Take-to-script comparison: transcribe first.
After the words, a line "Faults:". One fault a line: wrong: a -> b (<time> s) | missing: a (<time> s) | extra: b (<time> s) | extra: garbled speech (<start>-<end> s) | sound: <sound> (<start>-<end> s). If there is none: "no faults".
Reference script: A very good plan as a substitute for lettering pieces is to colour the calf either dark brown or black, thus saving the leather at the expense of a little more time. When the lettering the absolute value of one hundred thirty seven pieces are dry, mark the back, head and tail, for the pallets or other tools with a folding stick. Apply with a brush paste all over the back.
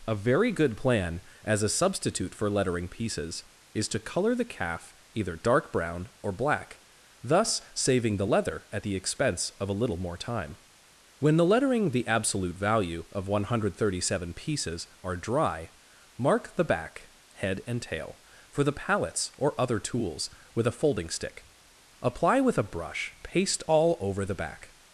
A very good plan as a substitute for lettering pieces is to colour the calf either dark brown or black, thus saving the leather at the expense of a little more time. When the lettering the absolute value of one hundred thirty seven pieces are dry, mark the back, head and tail, for the pallets or other tools with a folding stick. Apply with a brush paste all over the back.
Faults:
no faults